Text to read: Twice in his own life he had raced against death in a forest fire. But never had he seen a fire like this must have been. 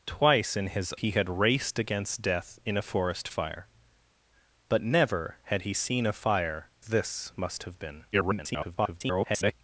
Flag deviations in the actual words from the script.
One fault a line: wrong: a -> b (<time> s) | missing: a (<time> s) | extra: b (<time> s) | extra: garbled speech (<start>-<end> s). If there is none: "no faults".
missing: own life (0.9 s)
missing: like (6.7 s)
extra: garbled speech (8.1-9.5 s)